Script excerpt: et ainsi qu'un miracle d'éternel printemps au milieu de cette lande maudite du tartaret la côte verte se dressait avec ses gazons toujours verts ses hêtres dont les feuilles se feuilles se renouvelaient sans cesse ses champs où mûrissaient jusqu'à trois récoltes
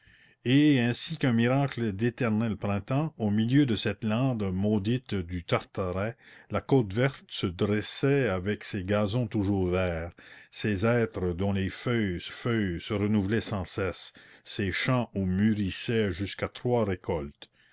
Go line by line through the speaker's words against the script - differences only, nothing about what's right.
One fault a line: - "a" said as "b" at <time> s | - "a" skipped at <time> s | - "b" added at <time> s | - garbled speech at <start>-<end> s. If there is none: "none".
none